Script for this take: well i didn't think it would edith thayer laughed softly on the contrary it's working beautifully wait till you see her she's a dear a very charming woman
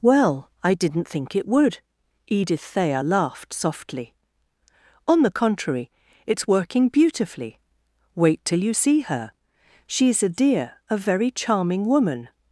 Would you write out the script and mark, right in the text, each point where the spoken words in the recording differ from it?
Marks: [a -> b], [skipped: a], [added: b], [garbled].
well i didn't think it would edith thayer laughed softly on the contrary it's working beautifully wait till you see her she's a dear a very charming woman